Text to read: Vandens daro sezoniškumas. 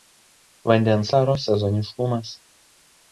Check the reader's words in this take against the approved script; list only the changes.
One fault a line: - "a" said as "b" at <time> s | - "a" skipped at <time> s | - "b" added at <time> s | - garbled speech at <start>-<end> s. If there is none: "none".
none